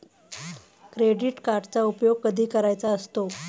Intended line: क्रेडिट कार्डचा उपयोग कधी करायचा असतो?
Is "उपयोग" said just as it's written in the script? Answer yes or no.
yes